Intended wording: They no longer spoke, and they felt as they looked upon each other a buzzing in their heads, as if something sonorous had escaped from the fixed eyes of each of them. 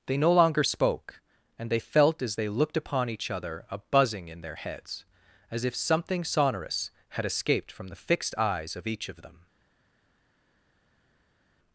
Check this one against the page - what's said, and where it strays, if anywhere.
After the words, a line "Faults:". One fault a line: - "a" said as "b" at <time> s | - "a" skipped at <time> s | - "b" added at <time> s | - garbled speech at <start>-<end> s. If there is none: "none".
They no longer spoke, and they felt as they looked upon each other a buzzing in their heads, as if something sonorous had escaped from the fixed eyes of each of them.
Faults:
none